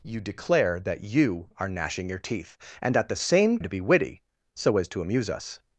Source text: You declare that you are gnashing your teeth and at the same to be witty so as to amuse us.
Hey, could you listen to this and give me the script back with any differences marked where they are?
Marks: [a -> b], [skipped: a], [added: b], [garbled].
You declare that you are gnashing your teeth and at the same to be witty so as to amuse us.